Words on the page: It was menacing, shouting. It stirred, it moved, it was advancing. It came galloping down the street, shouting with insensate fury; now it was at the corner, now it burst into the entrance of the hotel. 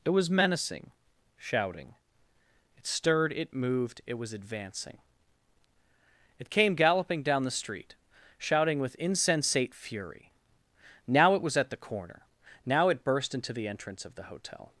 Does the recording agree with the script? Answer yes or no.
yes